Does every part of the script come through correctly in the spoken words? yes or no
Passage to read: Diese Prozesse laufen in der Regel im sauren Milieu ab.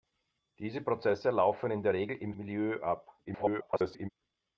no